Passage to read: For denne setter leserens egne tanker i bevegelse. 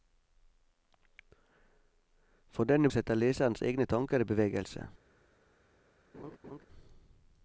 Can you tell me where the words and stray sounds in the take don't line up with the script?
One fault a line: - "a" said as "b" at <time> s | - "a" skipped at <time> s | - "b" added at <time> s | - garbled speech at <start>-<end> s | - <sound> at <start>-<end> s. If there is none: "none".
- laugh at 6.1-6.6 s